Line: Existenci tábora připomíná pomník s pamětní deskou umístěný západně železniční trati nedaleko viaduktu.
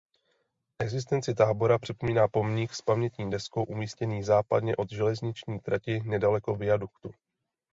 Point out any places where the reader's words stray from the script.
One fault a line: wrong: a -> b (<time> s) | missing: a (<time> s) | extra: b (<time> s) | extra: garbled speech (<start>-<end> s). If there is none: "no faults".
extra: od (4.8 s)